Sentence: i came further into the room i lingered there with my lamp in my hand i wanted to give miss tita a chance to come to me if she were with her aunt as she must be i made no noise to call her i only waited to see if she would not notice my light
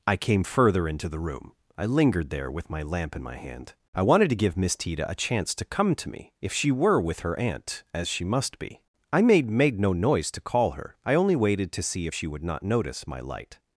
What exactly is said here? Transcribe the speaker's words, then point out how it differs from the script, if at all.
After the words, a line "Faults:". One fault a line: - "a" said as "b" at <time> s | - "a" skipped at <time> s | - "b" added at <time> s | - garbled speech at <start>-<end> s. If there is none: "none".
i came further into the room i lingered there with my lamp in my hand i wanted to give miss tita a chance to come to me if she were with her aunt as she must be i made made no noise to call her i only waited to see if she would not notice my light
Faults:
- "made" added at 9.5 s